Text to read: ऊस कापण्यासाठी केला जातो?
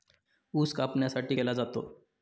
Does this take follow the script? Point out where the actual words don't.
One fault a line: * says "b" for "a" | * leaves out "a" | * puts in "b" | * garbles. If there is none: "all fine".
all fine